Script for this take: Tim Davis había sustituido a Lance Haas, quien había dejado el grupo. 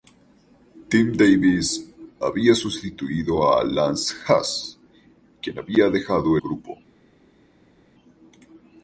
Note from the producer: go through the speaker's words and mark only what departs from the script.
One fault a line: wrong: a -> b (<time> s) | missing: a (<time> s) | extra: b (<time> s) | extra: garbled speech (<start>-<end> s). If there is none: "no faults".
missing: el (6.4 s)